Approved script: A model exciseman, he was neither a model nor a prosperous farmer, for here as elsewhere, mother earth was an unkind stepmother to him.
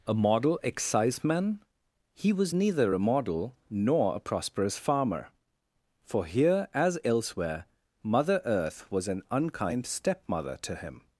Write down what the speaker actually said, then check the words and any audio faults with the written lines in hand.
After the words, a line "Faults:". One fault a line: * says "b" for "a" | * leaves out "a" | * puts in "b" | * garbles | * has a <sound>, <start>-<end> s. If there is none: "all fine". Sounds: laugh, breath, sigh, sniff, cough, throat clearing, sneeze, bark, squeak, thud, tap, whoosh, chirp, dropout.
A model exciseman, he was neither a model nor a prosperous farmer, for here as elsewhere, mother earth was an unkind stepmother to him.
Faults:
all fine